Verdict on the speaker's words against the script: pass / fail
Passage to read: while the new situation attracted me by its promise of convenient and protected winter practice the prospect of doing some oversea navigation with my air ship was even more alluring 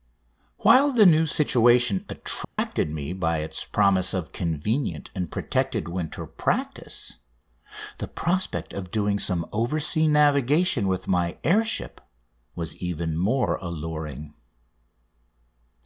pass